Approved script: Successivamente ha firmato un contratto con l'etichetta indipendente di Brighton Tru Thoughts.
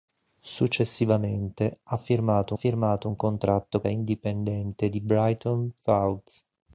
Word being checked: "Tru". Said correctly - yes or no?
no